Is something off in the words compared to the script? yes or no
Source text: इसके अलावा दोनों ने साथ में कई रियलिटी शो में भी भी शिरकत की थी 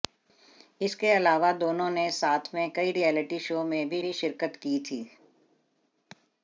no